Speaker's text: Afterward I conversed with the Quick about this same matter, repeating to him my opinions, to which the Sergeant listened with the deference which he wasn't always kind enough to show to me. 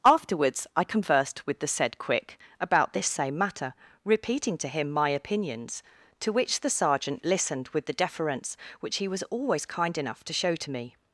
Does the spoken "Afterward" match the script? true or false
false